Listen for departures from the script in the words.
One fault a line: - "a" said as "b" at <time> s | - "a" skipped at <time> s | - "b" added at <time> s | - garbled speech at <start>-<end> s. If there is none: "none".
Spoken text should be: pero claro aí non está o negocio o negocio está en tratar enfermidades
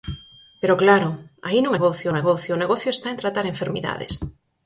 - "está" said as "negocio" at 1.7 s